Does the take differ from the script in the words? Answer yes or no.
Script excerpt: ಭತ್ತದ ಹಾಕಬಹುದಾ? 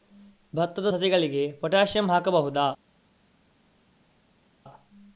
yes